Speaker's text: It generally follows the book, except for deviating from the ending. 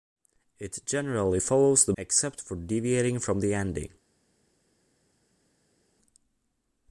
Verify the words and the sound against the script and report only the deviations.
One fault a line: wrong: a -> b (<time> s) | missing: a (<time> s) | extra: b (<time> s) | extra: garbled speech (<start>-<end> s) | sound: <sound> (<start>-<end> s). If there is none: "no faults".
missing: book (1.9 s)